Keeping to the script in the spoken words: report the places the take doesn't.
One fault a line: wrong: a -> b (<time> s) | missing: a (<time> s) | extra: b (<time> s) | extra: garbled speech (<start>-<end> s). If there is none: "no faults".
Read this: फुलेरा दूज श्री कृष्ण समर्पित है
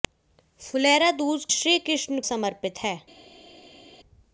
no faults